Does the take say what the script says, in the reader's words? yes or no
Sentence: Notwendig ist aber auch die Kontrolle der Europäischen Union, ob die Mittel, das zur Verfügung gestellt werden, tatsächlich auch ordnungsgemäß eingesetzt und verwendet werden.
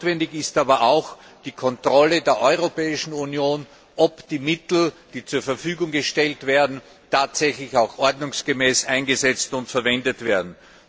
no